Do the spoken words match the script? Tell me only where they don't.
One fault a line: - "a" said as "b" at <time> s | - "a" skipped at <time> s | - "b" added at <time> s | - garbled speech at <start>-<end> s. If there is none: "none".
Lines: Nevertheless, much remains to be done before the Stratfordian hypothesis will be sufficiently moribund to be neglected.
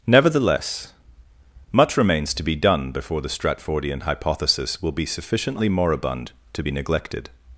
none